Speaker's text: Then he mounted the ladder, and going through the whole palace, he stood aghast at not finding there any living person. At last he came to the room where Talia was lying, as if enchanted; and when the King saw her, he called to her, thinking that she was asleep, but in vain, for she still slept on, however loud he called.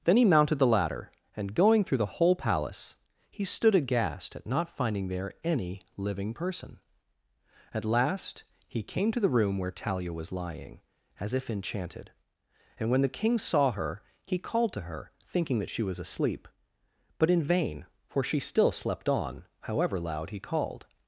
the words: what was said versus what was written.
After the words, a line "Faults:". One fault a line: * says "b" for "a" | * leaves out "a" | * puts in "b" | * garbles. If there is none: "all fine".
Then he mounted the ladder, and going through the whole palace, he stood aghast at not finding there any living person. At last he came to the room where Talia was lying, as if enchanted; and when the King saw her, he called to her, thinking that she was asleep, but in vain, for she still slept on, however loud he called.
Faults:
all fine